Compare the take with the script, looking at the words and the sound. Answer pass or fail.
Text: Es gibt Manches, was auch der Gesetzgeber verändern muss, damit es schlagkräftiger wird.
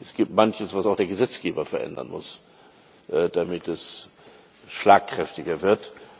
pass